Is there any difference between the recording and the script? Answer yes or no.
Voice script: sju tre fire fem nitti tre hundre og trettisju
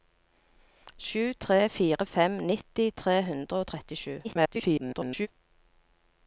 yes